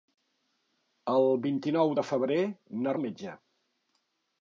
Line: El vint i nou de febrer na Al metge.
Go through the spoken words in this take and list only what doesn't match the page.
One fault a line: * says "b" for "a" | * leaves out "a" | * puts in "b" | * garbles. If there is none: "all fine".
all fine